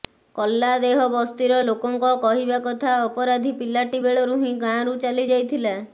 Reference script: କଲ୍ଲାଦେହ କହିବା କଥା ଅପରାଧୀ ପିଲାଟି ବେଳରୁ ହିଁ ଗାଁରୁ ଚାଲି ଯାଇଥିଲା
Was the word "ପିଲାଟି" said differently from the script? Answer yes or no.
no